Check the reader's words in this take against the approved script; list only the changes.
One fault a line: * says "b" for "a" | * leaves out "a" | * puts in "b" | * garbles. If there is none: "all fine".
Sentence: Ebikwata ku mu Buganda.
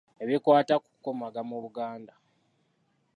* puts in "kukomaga"